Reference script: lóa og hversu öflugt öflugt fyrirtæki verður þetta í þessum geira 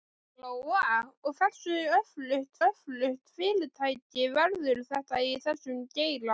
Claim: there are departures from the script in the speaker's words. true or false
false